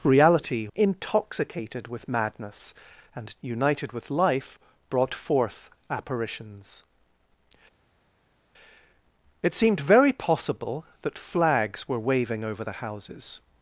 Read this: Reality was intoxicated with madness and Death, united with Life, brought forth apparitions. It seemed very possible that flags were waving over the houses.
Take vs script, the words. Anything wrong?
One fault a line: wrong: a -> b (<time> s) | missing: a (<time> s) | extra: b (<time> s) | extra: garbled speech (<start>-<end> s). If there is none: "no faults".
missing: was (0.7 s)
missing: Death (3.3 s)